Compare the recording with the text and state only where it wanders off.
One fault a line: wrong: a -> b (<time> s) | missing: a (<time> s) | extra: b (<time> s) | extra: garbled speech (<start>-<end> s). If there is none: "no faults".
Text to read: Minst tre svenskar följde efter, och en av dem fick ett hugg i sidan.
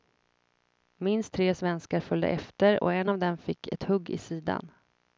no faults